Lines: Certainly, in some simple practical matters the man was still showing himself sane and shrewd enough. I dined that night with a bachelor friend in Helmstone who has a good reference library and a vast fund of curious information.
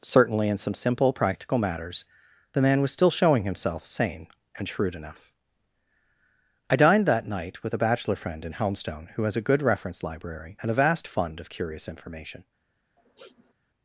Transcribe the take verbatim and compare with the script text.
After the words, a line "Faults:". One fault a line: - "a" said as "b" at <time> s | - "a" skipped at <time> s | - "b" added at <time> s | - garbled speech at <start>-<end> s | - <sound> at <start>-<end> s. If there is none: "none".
Certainly, in some simple practical matters the man was still showing himself sane and shrewd enough. I dined that night with a bachelor friend in Helmstone who has a good reference library and a vast fund of curious information.
Faults:
- sniff at 13.0-13.5 s